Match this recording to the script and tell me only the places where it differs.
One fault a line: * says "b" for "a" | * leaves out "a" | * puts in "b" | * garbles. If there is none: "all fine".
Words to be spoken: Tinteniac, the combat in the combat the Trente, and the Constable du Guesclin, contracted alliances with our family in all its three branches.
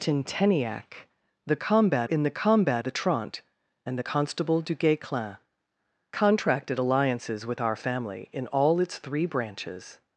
all fine